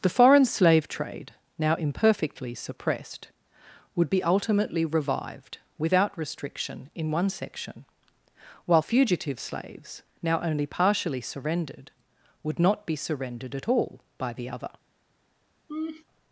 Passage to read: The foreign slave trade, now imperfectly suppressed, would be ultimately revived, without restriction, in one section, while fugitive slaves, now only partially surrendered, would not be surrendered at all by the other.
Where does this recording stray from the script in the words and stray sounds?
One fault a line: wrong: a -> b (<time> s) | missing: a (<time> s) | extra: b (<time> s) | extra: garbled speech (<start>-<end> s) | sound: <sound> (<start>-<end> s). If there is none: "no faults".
sound: laugh (15.7-16.0 s)